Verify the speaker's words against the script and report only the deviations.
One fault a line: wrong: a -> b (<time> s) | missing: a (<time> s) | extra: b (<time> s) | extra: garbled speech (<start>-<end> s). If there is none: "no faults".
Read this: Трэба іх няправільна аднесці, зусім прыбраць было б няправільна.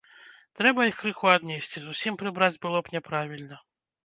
wrong: няправільна -> крыху (1.0 s)